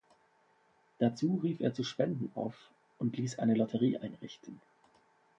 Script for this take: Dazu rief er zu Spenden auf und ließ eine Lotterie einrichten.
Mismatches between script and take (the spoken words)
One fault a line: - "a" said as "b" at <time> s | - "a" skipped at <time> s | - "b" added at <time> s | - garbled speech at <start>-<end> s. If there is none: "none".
none